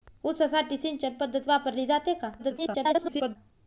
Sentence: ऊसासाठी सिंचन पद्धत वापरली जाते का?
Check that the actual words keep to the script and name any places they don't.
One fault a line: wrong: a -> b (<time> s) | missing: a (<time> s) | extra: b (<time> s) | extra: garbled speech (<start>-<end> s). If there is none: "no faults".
extra: garbled speech (2.4-3.4 s)